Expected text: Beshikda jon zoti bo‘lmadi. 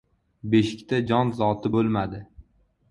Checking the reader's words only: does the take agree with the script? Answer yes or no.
yes